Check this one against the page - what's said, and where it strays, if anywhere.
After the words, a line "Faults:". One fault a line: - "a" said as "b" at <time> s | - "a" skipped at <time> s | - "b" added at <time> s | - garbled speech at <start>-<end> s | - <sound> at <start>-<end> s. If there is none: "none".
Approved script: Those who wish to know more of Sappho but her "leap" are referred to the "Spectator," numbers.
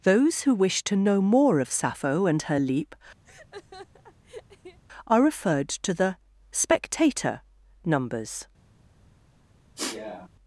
Those who wish to know more of Sappho and her "leap" are referred to the "Spectator," numbers.
Faults:
- "but" said as "and" at 2.2 s
- laugh at 3.2-4.8 s
- sniff at 9.8-10.3 s